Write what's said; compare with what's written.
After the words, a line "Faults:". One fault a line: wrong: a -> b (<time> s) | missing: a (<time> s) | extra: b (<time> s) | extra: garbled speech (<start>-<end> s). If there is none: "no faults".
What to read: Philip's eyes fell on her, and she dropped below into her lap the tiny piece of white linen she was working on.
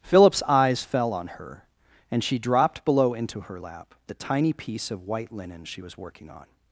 Philip's eyes fell on her, and she dropped below into her lap the tiny piece of white linen she was working on.
Faults:
no faults